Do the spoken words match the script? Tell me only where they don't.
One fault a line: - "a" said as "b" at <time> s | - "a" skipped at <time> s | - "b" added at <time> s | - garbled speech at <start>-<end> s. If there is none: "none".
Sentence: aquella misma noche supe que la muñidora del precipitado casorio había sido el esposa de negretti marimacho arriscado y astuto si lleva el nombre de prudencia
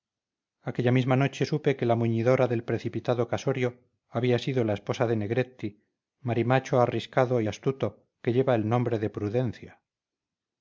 - "el" said as "la" at 4.6 s
- "si" said as "que" at 8.2 s